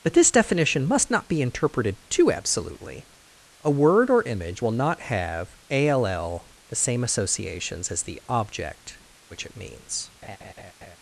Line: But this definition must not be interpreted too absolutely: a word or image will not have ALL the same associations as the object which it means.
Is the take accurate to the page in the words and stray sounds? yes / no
no